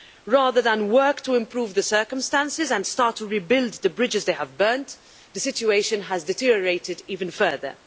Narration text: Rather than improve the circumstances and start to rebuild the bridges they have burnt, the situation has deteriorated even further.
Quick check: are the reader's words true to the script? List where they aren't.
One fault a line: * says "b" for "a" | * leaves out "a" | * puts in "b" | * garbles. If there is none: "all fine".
* puts in "work to"